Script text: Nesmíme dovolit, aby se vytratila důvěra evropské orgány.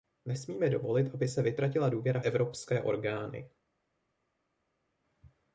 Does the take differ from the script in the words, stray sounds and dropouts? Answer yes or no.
no